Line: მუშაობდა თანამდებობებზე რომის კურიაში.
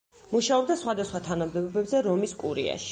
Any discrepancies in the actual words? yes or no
yes